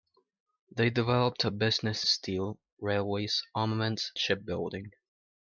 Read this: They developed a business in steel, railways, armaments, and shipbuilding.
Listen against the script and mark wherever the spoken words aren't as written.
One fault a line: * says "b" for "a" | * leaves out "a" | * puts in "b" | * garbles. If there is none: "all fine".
* leaves out "in"
* leaves out "and"